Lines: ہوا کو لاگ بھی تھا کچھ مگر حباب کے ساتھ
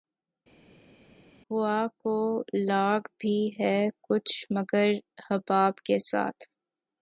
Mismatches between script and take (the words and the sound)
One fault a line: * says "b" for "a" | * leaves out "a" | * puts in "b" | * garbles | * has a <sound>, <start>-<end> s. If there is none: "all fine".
* says "ہے" for "تھا"